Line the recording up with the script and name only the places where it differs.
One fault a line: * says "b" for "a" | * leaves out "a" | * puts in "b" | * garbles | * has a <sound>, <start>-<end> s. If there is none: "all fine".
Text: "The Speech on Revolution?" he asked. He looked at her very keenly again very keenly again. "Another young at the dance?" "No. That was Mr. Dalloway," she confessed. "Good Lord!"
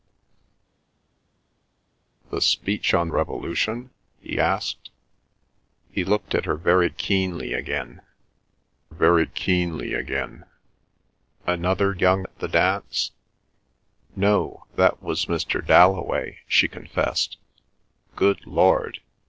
all fine